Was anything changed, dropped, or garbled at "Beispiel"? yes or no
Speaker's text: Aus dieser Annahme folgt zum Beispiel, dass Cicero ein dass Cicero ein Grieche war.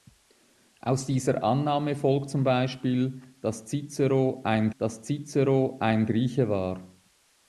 no